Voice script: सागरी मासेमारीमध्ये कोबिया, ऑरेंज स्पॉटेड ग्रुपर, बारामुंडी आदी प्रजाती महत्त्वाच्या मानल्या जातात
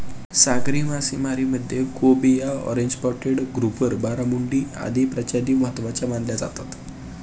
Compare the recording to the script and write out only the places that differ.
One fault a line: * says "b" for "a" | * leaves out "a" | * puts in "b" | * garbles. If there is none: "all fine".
all fine